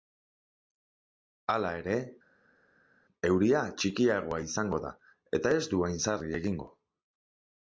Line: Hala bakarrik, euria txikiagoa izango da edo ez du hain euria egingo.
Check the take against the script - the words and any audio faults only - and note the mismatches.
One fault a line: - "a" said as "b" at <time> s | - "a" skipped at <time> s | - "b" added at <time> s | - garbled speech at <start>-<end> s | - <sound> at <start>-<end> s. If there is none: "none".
- "bakarrik" said as "ere" at 1.8 s
- "edo" said as "eta" at 5.4 s
- "euria" said as "sarri" at 6.1 s